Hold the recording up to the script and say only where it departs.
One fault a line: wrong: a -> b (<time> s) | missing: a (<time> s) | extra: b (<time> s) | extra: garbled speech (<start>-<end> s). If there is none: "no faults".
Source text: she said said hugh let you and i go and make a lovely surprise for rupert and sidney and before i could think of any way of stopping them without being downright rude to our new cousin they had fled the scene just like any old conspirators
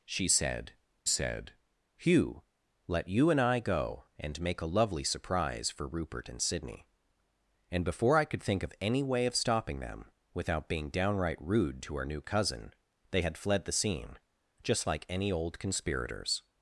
no faults